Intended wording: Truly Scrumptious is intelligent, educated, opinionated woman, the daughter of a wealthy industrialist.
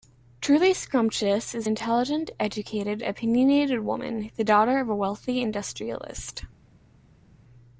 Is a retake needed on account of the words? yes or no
no